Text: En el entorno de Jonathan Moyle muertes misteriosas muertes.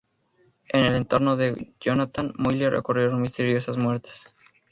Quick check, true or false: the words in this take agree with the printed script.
false